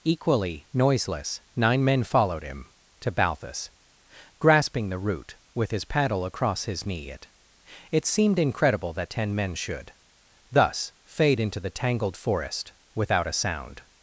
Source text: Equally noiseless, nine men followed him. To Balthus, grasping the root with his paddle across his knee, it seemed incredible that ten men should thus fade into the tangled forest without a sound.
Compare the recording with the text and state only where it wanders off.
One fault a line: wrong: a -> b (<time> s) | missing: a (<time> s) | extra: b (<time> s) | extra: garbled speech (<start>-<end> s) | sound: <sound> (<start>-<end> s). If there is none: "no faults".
extra: it (7.9 s)